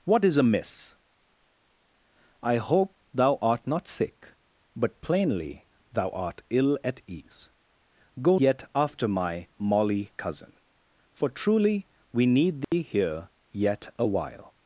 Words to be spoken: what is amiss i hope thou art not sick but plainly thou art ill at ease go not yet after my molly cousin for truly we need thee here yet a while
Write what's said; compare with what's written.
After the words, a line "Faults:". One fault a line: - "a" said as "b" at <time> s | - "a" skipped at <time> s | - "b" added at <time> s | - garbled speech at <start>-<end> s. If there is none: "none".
what is amiss i hope thou art not sick but plainly thou art ill at ease go yet after my molly cousin for truly we need thee here yet a while
Faults:
- "not" skipped at 8.4 s